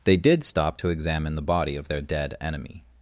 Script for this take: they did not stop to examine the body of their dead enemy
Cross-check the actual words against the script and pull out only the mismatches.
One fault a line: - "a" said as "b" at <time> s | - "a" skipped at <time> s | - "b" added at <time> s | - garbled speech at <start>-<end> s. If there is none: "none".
- "not" skipped at 0.4 s